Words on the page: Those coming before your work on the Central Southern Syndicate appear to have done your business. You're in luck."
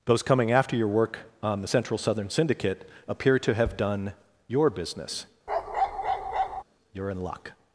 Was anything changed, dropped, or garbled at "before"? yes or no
yes